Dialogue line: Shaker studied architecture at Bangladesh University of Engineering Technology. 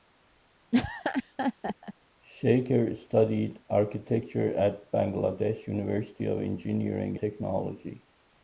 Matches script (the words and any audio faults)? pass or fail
fail